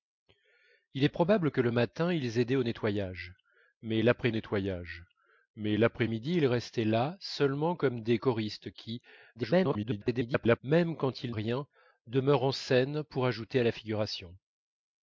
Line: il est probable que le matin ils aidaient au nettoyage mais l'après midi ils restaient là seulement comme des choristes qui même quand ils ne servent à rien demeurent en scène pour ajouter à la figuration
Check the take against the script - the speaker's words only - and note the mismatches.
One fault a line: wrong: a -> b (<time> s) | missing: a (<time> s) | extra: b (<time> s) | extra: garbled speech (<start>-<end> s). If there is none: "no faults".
extra: nettoyage mais l'après (4.3 s)
extra: garbled speech (9.3-10.6 s)
missing: ne servent à (11.3 s)